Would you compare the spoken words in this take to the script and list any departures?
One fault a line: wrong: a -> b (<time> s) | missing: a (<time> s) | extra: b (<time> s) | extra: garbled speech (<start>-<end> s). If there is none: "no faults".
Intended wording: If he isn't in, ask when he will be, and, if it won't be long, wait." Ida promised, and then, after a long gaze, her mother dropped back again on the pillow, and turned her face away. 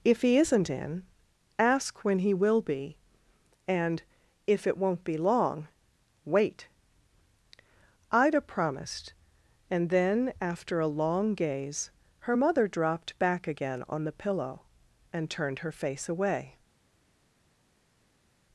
no faults